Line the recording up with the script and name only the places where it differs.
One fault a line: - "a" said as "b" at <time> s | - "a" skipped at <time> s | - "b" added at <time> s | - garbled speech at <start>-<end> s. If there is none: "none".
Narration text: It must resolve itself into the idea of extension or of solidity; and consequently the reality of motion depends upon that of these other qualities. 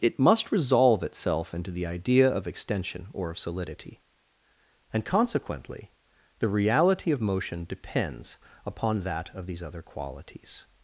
none